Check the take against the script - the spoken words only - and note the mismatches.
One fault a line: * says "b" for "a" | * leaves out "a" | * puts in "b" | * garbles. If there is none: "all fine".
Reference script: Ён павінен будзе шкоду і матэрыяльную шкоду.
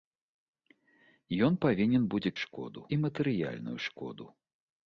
all fine